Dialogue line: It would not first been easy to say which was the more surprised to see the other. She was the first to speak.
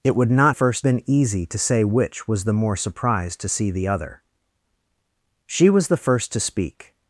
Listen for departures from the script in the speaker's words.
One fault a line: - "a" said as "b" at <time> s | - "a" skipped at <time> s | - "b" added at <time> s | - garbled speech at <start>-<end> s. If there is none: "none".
none